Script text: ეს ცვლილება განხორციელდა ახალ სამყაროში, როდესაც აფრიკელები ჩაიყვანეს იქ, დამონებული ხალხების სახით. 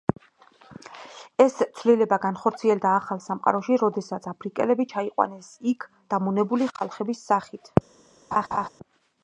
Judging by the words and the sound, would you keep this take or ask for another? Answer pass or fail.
fail